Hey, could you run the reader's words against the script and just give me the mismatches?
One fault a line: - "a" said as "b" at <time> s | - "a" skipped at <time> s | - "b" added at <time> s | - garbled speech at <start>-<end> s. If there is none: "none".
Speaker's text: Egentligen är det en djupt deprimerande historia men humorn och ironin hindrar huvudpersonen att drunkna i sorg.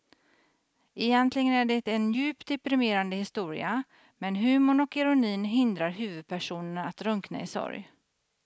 none